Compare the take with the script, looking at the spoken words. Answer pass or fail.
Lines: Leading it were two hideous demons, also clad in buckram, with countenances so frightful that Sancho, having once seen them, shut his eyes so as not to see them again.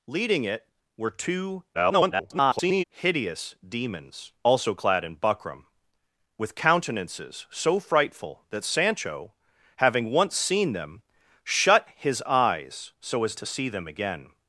fail